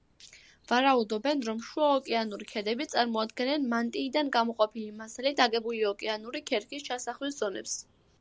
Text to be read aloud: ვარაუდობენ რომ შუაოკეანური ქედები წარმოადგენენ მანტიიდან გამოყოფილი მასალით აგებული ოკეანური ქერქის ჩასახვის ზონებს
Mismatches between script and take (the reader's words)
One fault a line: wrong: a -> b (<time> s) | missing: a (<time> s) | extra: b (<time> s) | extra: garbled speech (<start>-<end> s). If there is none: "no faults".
no faults